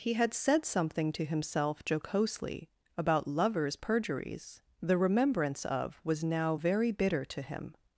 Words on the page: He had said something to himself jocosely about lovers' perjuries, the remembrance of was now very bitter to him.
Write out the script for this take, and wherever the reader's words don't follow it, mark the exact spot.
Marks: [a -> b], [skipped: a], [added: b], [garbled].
He had said something to himself jocosely about lovers' perjuries, the remembrance of was now very bitter to him.